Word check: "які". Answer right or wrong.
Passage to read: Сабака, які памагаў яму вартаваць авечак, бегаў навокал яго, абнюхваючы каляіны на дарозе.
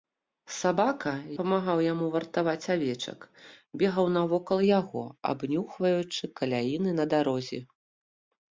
wrong